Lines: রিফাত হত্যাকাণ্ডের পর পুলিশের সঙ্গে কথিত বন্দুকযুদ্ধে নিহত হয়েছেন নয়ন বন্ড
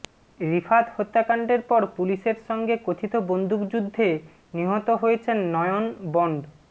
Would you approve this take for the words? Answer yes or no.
yes